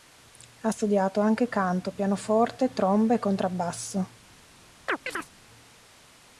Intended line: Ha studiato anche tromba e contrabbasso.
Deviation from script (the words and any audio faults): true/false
true